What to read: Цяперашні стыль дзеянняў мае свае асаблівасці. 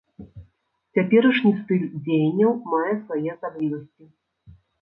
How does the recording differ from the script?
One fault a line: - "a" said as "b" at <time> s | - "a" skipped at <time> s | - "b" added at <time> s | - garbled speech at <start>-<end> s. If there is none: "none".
none